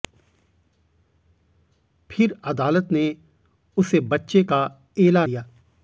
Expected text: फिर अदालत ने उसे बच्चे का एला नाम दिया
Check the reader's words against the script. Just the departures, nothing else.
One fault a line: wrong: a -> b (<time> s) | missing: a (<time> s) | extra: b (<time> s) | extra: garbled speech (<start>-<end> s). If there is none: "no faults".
missing: नाम (5.3 s)